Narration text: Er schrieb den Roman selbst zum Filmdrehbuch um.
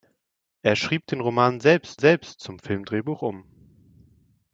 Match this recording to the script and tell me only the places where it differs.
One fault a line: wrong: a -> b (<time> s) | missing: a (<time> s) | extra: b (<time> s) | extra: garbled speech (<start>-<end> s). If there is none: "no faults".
extra: selbst (2.0 s)